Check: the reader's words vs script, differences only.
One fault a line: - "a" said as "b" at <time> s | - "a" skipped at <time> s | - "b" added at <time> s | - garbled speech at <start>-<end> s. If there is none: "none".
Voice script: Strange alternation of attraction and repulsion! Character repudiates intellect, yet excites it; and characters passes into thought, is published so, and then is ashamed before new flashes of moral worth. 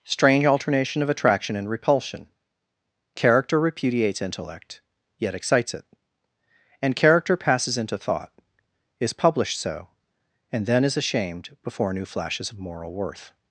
- "characters" said as "character" at 7.0 s